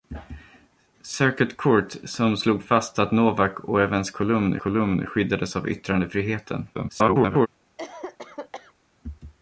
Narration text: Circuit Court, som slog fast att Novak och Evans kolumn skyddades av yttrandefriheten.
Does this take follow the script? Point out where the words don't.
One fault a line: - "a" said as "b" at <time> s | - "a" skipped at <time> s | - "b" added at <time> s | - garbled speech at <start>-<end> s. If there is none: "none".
- "kolumn" added at 4.6 s
- garbled speech at 6.7-7.5 s